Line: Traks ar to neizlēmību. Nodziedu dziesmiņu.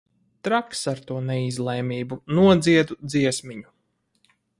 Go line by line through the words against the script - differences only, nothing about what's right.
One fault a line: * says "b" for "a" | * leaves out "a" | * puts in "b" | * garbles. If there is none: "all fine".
all fine